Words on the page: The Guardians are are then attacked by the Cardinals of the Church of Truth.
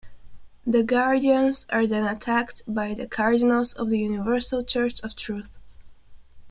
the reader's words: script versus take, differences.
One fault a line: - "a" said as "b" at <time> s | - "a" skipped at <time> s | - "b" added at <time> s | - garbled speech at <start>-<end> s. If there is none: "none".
- "are" skipped at 1.9 s
- "Universal" added at 4.0 s